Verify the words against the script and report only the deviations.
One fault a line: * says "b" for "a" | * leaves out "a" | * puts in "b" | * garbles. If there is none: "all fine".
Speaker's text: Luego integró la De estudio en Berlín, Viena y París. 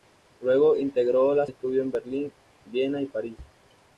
all fine